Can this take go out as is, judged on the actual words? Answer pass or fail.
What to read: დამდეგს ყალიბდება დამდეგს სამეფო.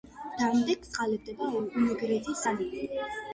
fail